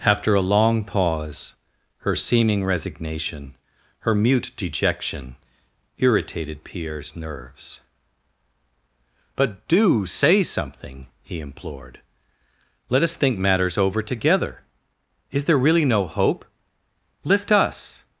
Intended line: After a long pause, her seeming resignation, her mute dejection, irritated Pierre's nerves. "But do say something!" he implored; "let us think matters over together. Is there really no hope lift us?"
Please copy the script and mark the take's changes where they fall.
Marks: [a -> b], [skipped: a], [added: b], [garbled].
After a long pause, her seeming resignation, her mute dejection, irritated Pierre's nerves. "But do say something!" he implored; "let us think matters over together. Is there really no hope lift us?"